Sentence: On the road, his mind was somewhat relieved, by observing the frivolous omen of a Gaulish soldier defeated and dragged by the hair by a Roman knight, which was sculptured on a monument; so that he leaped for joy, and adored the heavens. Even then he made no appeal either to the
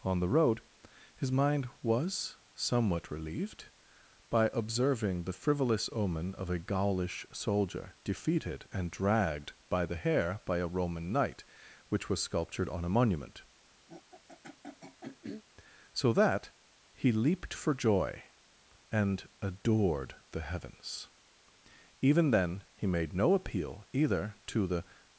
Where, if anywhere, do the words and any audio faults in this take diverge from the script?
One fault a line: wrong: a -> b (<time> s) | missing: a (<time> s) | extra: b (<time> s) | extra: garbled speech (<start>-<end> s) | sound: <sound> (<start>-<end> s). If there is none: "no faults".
sound: throat clearing (13.9-15.4 s)